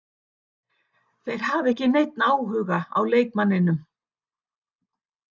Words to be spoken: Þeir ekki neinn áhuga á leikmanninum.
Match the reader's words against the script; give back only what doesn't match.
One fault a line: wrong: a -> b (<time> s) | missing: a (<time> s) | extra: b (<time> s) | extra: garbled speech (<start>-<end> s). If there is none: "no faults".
extra: hafa (1.5 s)